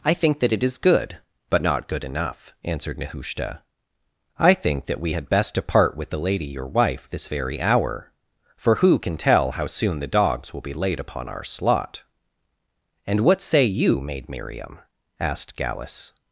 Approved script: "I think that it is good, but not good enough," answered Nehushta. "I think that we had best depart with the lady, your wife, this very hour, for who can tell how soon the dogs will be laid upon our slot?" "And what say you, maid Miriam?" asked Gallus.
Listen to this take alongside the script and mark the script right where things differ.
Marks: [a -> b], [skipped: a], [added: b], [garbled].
"I think that it is good, but not good enough," answered Nehushta. "I think that we had best depart with the lady, your wife, this very hour, for who can tell how soon the dogs will be laid upon our slot?" "And what say you, maid Miriam?" asked Gallus.